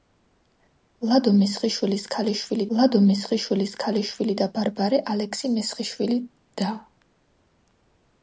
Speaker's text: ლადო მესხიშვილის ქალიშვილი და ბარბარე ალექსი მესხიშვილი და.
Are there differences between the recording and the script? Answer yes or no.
yes